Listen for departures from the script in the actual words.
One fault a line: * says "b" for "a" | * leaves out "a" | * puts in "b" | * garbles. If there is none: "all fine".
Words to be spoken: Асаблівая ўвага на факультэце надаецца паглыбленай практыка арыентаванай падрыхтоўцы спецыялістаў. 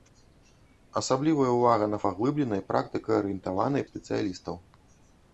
* leaves out "факультэце надаецца"
* leaves out "падрыхтоўцы"